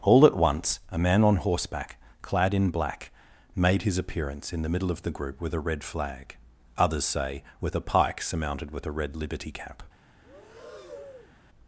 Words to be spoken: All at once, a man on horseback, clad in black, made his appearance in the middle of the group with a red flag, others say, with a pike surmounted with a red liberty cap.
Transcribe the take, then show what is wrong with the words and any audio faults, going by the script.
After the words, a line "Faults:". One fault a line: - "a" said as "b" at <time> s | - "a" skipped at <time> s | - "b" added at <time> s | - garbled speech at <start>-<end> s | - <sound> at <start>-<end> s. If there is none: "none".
All at once, a man on horseback, clad in black, made his appearance in the middle of the group with a red flag, others say, with a pike surmounted with a red liberty cap.
Faults:
- breath at 10.2-11.4 s